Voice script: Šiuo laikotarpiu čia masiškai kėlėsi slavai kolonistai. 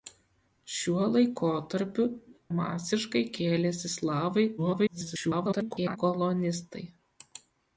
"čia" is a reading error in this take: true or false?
true